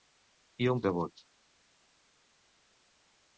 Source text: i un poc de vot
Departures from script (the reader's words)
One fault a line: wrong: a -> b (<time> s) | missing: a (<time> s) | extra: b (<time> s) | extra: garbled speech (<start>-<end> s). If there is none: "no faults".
missing: poc (0.8 s)